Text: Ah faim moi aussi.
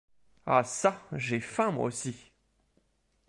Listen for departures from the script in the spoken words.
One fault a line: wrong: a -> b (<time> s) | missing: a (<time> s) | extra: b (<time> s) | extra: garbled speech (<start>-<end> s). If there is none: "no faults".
extra: çà j'ai (0.6 s)